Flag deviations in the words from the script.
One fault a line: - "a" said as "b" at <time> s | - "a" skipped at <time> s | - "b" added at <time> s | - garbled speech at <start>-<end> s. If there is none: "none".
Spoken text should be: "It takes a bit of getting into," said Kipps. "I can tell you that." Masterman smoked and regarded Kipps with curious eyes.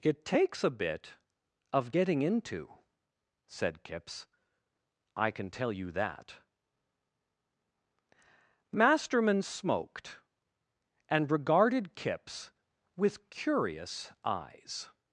none